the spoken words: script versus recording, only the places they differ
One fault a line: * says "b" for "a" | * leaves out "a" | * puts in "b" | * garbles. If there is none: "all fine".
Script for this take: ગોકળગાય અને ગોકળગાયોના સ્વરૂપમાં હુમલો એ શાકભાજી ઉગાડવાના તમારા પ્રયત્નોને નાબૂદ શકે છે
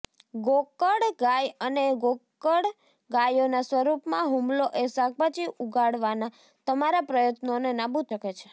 all fine